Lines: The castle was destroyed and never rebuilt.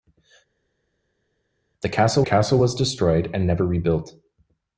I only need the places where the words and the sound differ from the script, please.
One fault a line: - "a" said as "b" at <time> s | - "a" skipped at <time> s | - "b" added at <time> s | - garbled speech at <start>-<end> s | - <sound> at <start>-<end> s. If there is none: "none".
- "castle" added at 2.2 s